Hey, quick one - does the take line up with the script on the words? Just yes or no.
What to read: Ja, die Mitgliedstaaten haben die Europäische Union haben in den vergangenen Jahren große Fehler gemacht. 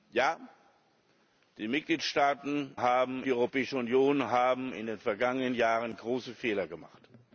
yes